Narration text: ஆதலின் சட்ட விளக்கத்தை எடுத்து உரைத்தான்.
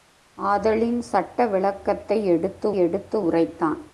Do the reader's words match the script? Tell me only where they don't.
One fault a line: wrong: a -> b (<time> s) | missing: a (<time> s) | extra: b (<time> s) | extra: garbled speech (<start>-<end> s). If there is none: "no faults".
extra: எடுத்து (2.8 s)